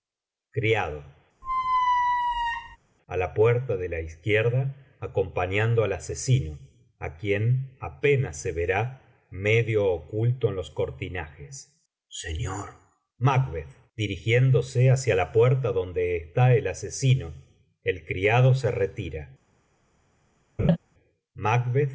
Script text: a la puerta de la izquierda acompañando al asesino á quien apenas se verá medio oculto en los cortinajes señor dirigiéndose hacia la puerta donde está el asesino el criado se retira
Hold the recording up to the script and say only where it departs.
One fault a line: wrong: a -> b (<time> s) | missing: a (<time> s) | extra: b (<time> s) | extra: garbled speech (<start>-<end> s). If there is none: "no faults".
no faults